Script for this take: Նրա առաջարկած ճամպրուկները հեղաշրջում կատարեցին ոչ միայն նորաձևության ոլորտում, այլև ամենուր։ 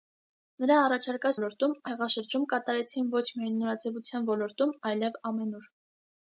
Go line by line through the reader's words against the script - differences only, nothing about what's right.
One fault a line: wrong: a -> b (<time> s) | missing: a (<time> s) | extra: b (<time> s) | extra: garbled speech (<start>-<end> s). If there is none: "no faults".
wrong: ճամպրուկները -> ոլորտում (1.4 s)